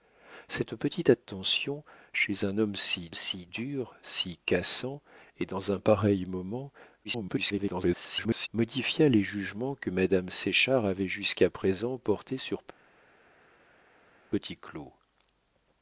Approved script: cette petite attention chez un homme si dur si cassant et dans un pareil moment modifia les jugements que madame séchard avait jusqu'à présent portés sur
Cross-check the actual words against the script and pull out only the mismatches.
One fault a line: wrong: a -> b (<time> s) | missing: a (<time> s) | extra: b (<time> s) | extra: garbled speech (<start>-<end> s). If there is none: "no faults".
extra: si (3.1 s)
extra: garbled speech (7.0-8.5 s)